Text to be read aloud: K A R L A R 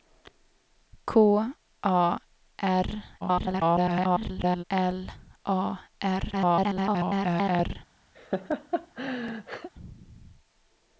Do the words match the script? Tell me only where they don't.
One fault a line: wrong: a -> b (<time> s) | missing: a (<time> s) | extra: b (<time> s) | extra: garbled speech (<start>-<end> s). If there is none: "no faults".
extra: garbled speech (3.2-4.6 s)
extra: garbled speech (6.3-7.8 s)